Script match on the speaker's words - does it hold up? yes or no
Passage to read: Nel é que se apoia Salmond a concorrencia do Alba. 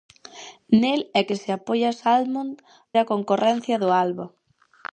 yes